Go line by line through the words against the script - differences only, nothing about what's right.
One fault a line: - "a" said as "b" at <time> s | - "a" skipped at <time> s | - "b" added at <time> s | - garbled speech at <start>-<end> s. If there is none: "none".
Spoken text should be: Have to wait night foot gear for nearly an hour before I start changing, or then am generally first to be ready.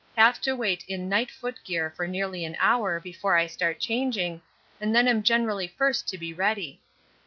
- "in" added at 0.9 s
- "or" said as "and" at 4.8 s